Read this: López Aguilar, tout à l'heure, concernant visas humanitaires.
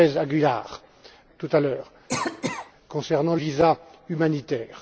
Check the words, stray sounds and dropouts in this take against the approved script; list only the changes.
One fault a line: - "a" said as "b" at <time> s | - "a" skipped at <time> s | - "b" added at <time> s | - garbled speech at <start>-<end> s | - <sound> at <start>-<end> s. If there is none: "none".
- cough at 2.1-2.7 s